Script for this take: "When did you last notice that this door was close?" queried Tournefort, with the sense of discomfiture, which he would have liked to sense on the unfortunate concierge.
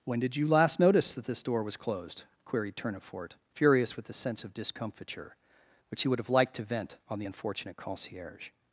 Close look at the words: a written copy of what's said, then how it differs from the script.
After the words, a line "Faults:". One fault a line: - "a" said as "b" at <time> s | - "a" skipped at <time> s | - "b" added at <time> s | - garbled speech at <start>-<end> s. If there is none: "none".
"When did you last notice that this door was closed?" queried Tournefort, furious with the sense of discomfiture, which he would have liked to vent on the unfortunate concierge.
Faults:
- "close" said as "closed" at 1.8 s
- "furious" added at 3.5 s
- "sense" said as "vent" at 6.6 s